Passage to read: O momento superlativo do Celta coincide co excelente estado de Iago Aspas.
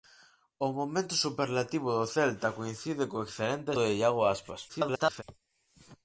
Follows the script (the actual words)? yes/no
no